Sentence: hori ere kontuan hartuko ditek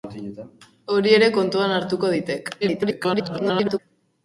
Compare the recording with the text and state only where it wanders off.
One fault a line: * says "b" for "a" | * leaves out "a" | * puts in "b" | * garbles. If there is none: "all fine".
* garbles